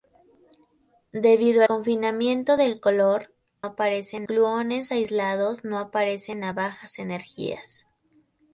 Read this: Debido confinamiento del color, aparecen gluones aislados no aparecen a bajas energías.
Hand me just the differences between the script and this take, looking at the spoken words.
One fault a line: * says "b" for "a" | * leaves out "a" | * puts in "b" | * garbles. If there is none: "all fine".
all fine